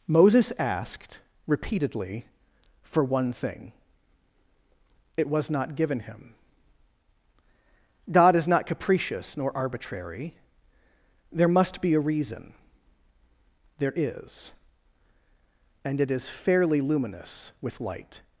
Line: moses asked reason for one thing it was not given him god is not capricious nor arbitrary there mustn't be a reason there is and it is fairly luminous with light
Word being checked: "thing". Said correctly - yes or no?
yes